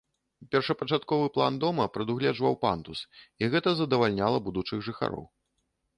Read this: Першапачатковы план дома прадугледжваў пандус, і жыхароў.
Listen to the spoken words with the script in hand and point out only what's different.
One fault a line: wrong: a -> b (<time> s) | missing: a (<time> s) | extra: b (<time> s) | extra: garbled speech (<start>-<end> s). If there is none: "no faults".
extra: гэта задавальняла будучых (3.6 s)